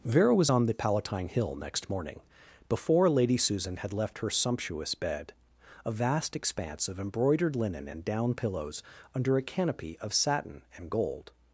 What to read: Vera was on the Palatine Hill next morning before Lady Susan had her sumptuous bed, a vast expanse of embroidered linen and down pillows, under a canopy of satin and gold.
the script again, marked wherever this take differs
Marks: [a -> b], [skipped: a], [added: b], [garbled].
Vera was on the Palatine Hill next morning before Lady Susan had [added: left] her sumptuous bed, a vast expanse of embroidered linen and down pillows, under a canopy of satin and gold.